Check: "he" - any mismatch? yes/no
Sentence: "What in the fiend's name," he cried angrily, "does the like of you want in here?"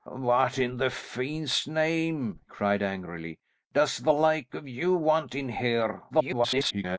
yes